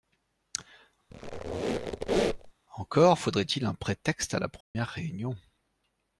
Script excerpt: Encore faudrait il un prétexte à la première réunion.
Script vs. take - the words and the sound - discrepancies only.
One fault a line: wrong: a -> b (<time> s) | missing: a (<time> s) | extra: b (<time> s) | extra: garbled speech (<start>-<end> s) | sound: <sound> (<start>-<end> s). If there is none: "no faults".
sound: squeak (1.1-2.5 s)
sound: dropout (4.6-4.8 s)